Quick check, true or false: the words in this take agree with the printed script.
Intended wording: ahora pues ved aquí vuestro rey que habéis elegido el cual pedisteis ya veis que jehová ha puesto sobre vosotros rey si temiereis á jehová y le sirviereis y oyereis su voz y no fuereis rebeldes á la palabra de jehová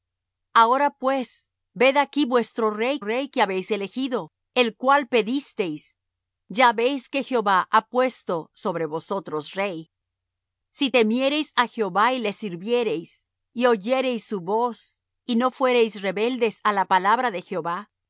false